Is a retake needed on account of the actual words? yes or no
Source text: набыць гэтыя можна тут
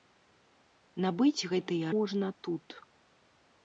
no